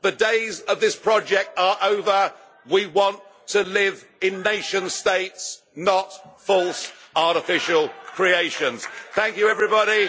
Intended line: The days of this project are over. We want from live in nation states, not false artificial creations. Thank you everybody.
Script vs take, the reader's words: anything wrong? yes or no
yes